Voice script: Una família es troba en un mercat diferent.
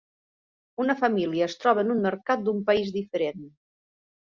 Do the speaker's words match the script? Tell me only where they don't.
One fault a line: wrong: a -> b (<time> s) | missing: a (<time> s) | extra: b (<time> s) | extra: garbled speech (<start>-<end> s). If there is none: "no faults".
extra: d'un país (2.5 s)